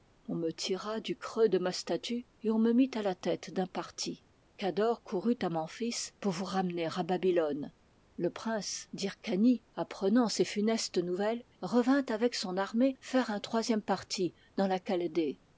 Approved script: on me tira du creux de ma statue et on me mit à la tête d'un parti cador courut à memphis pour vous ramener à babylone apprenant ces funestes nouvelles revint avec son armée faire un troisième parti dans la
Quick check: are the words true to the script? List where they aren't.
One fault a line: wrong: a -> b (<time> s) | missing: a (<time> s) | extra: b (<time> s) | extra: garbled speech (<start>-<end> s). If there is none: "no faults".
extra: le prince d'hyrcanie (8.2 s)